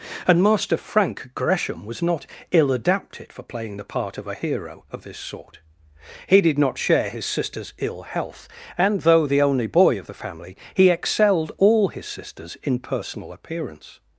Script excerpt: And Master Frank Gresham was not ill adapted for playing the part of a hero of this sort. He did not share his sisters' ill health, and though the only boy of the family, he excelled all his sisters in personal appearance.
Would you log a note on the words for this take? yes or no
no